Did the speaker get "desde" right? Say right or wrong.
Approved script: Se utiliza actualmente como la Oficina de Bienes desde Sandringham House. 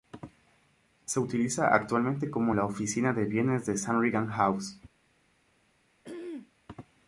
wrong